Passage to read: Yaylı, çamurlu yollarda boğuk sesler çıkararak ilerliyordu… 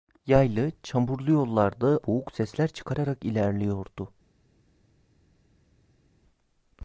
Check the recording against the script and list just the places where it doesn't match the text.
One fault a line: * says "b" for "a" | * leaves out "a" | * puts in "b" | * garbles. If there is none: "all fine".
all fine